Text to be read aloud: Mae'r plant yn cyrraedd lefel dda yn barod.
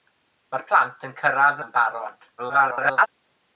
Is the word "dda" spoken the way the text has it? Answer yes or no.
no